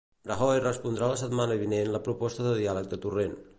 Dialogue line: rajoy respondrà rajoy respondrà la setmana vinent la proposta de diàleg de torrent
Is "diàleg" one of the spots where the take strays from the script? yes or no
no